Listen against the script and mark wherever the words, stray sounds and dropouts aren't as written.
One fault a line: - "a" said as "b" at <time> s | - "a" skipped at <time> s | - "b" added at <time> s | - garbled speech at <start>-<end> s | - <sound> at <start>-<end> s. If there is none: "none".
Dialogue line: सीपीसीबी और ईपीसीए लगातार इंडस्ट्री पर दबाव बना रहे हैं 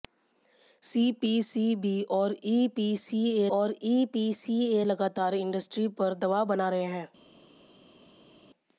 - "और ईपीसीए" added at 3.5 s